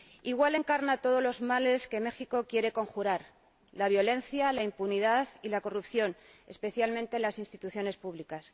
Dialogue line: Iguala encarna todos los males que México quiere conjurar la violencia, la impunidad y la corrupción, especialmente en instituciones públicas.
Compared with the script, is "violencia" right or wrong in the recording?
right